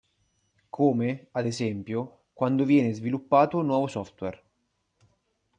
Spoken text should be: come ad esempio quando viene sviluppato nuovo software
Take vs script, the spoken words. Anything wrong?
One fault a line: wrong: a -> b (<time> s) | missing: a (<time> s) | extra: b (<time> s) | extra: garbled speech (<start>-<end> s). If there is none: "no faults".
no faults